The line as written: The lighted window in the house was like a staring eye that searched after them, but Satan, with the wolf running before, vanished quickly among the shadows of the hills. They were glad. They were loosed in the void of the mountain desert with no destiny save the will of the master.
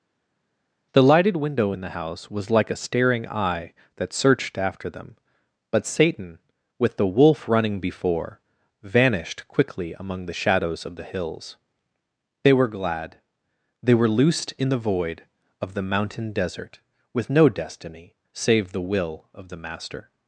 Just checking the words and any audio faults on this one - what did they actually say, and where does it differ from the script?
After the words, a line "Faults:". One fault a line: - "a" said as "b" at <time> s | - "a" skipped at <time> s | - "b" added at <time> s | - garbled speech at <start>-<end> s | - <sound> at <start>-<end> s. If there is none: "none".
The lighted window in the house was like a staring eye that searched after them, but Satan, with the wolf running before, vanished quickly among the shadows of the hills. They were glad. They were loosed in the void of the mountain desert with no destiny save the will of the master.
Faults:
none